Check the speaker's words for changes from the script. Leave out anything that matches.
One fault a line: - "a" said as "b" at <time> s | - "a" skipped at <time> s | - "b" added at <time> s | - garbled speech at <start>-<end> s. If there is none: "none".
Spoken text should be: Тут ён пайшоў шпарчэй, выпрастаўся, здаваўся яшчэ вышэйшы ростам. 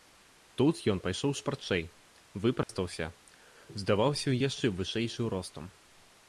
none